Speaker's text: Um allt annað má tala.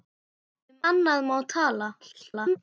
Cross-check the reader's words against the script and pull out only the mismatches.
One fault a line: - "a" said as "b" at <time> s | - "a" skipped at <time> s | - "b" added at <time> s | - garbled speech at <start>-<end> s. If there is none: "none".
- "allt" skipped at 0.8 s
- garbled speech at 2.0-2.6 s